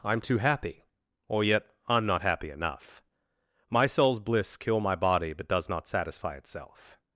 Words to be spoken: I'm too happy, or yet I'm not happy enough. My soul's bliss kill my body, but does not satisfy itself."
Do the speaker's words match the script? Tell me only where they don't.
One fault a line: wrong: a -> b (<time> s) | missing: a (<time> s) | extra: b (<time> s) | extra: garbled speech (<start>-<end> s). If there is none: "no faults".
no faults